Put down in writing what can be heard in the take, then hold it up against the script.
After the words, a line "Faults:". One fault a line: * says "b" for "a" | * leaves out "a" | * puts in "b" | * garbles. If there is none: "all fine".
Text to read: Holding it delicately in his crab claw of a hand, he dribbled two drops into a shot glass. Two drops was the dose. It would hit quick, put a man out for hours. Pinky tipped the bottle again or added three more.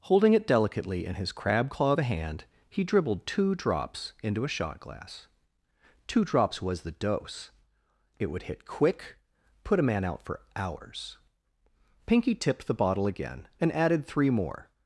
Holding it delicately in his crab claw of a hand, he dribbled two drops into a shot glass. Two drops was the dose. It would hit quick, put a man out for hours. Pinky tipped the bottle again and added three more.
Faults:
* says "and" for "or"